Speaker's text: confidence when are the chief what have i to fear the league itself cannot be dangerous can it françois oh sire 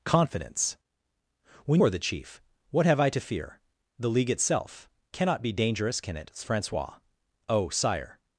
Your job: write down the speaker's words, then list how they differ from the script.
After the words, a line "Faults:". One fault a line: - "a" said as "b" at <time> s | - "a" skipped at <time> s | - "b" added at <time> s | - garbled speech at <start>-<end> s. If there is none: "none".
confidence when are the chief what have i to fear the league itself cannot be dangerous can it françois oh sire
Faults:
none